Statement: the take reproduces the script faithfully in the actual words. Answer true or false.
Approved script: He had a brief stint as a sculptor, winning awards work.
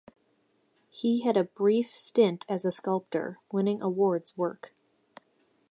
true